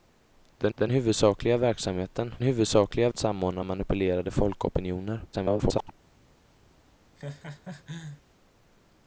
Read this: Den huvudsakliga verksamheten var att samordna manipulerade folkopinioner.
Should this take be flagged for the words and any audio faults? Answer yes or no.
yes